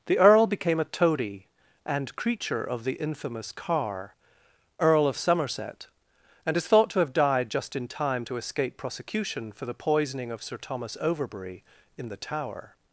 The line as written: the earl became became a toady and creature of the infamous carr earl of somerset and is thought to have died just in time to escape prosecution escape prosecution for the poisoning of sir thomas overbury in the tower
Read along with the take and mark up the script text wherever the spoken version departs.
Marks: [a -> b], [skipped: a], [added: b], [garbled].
the earl became [skipped: became] a toady and creature of the infamous carr earl of somerset and is thought to have died just in time to escape prosecution [skipped: escape prosecution] for the poisoning of sir thomas overbury in the tower